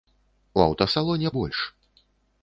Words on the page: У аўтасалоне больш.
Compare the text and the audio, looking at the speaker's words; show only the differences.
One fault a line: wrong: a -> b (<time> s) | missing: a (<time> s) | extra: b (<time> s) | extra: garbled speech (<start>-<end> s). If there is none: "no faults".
no faults